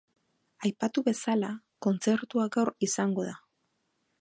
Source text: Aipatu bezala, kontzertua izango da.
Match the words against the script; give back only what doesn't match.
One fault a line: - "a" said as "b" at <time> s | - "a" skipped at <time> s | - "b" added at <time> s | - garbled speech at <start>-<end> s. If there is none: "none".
- "gaur" added at 2.6 s